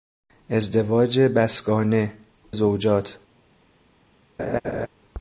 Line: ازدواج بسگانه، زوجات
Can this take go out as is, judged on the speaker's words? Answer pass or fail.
pass